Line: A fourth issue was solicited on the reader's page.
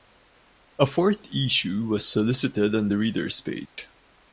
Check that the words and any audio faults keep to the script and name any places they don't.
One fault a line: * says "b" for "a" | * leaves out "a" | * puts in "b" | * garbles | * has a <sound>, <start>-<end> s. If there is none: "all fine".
* has a dropout, 3.7-3.8 s